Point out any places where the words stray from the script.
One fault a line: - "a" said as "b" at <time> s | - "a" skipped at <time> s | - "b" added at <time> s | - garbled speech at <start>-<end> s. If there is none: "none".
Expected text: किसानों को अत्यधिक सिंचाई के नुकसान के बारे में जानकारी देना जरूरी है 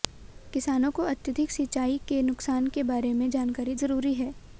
- "देना" skipped at 3.8 s